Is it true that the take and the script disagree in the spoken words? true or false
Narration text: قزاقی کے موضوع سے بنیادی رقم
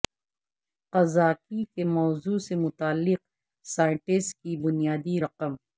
true